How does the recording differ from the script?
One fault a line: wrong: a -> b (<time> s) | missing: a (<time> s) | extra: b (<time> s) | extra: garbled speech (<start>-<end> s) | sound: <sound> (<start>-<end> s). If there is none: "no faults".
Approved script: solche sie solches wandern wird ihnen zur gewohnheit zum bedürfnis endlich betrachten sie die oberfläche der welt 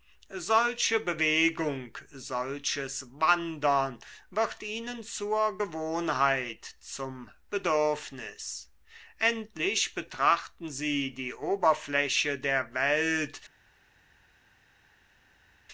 wrong: sie -> bewegung (1.0 s)